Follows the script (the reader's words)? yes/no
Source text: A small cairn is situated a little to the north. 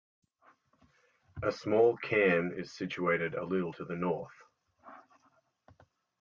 yes